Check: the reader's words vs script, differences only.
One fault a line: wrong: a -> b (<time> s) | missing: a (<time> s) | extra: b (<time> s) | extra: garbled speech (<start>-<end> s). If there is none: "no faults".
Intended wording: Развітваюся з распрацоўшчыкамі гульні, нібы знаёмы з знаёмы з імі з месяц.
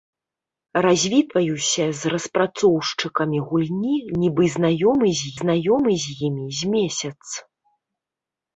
no faults